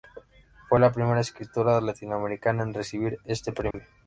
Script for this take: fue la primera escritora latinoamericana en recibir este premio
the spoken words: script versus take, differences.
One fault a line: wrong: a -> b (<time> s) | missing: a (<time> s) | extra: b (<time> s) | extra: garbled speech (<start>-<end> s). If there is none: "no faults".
no faults